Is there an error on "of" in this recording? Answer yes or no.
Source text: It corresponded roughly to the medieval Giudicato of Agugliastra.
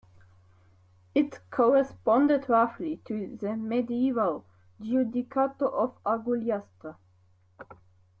no